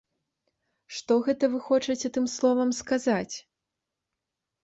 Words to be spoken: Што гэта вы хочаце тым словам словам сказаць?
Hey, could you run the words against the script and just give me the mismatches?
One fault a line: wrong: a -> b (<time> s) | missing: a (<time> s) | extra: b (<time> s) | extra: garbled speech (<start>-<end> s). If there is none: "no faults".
missing: словам (2.7 s)